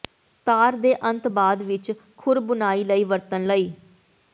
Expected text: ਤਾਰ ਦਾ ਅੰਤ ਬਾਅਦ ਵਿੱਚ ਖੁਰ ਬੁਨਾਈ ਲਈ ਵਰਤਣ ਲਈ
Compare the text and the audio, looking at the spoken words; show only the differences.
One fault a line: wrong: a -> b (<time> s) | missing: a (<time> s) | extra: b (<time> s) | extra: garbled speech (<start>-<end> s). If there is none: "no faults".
wrong: ਦਾ -> ਦੇ (0.8 s)